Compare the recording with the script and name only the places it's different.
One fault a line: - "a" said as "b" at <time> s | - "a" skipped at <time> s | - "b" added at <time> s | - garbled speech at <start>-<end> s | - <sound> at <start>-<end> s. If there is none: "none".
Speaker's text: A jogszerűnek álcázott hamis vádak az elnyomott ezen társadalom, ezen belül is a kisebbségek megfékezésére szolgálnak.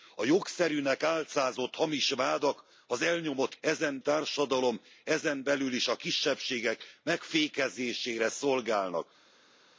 none